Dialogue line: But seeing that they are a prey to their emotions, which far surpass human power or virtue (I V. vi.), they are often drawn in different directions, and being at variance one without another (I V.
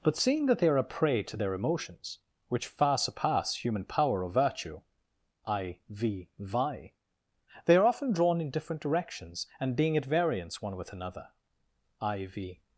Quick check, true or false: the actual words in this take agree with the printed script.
false